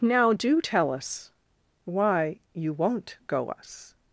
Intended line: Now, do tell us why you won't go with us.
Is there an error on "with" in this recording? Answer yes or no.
yes